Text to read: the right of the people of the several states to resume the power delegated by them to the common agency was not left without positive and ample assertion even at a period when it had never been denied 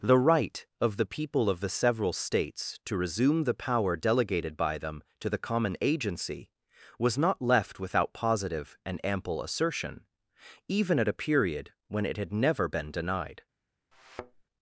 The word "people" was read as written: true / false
true